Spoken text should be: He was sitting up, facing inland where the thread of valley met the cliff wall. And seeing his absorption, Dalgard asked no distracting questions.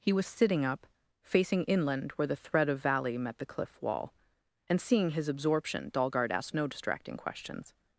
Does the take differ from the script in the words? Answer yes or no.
no